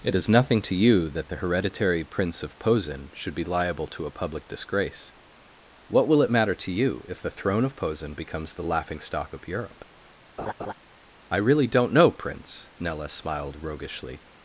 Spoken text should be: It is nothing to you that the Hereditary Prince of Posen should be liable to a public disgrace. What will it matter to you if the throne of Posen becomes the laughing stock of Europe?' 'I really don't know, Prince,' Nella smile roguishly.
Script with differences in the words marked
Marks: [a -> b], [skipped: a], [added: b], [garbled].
It is nothing to you that the Hereditary Prince of Posen should be liable to a public disgrace. What will it matter to you if the throne of Posen becomes the laughing stock of Europe?' 'I really don't know, Prince,' Nella [smile -> smiled] roguishly.